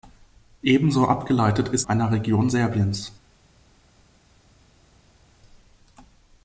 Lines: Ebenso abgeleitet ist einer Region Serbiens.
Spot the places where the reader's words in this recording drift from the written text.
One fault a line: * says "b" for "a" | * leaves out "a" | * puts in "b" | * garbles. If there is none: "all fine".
all fine